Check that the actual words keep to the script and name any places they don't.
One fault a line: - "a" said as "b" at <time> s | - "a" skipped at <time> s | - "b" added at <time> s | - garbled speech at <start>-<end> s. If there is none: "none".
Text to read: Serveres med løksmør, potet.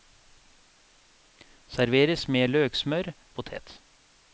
none